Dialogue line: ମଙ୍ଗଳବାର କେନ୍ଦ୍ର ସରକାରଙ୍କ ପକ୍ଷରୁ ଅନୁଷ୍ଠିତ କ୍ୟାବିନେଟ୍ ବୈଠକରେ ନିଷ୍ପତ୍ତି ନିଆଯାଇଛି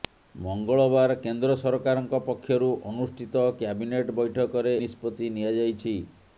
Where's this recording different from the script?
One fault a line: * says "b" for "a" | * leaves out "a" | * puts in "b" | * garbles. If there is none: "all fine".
all fine